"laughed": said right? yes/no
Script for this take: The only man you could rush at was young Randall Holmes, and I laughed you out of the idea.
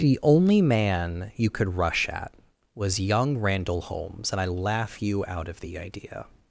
no